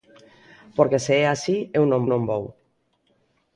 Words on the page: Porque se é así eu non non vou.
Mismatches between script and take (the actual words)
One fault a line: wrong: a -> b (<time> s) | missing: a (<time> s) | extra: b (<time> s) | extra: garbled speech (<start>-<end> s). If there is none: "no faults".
no faults